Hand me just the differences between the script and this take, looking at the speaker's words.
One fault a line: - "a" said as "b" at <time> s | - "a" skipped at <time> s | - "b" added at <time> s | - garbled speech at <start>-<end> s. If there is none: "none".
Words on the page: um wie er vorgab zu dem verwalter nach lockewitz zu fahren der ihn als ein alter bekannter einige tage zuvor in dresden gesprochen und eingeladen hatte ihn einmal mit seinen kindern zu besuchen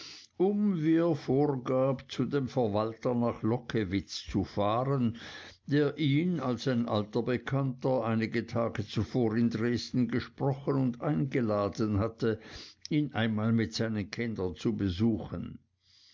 none